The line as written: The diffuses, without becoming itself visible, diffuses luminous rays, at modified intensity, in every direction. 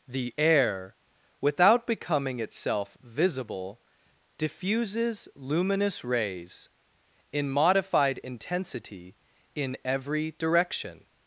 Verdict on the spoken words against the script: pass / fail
fail